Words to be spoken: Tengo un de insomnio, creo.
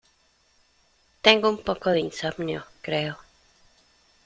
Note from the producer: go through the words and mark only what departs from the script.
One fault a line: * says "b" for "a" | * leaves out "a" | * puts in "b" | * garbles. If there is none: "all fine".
* puts in "poco"